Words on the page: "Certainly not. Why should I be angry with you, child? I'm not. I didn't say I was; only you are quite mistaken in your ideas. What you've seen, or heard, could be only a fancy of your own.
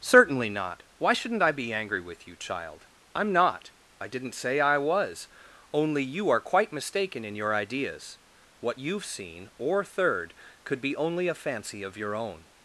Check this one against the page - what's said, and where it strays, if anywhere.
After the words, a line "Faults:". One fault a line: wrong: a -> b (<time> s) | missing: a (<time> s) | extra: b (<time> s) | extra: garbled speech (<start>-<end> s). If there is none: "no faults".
"Certainly not. Why shouldn't I be angry with you, child? I'm not. I didn't say I was; only you are quite mistaken in your ideas. What you've seen, or third, could be only a fancy of your own.
Faults:
wrong: should -> shouldn't (1.1 s)
wrong: heard -> third (9.8 s)